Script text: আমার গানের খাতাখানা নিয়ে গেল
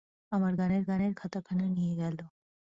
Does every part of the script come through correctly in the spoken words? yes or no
no